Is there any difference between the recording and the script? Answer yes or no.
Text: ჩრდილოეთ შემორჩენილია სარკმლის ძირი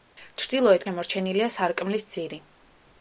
no